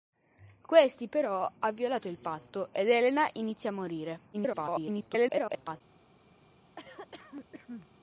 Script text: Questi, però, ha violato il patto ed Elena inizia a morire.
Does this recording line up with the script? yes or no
no